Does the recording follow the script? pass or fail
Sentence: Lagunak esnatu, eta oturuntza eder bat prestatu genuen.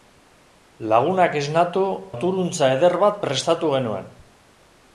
fail